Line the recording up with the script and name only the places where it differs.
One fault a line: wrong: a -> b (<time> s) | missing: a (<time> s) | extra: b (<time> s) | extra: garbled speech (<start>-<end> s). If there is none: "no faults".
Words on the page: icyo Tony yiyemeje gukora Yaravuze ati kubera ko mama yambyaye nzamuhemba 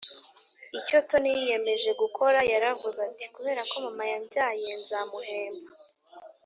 no faults